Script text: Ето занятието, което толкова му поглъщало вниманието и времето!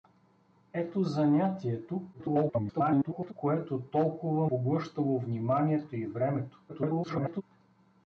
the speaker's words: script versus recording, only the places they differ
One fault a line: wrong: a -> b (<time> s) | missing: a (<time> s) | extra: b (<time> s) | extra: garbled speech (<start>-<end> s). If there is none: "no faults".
extra: garbled speech (2.1-3.3 s)
missing: му (4.5 s)
extra: garbled speech (6.7-7.4 s)